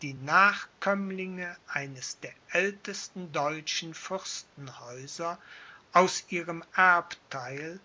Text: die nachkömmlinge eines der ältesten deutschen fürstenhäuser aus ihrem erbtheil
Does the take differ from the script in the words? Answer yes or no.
no